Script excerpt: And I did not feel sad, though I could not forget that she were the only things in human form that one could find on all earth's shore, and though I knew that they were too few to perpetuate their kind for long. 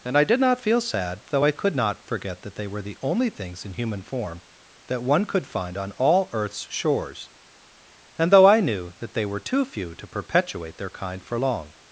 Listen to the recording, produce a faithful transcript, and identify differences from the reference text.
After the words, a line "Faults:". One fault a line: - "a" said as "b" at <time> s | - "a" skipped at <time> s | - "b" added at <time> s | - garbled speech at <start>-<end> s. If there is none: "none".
And I did not feel sad, though I could not forget that they were the only things in human form that one could find on all earth's shores, and though I knew that they were too few to perpetuate their kind for long.
Faults:
- "she" said as "they" at 2.6 s
- "shore" said as "shores" at 6.7 s